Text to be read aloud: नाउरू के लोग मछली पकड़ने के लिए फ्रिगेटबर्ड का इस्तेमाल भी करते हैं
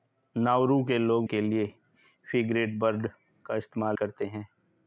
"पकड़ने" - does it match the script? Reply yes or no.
no